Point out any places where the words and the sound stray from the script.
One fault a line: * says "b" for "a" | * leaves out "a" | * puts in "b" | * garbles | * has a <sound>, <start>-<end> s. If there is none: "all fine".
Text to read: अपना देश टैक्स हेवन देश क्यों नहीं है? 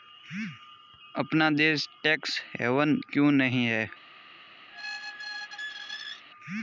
* leaves out "देश"
* has a squeak, 4.7-6.2 s